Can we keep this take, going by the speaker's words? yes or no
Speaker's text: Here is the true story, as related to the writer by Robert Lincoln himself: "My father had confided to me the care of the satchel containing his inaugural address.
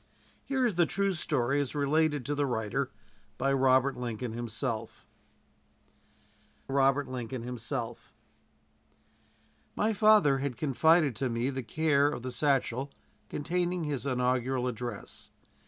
no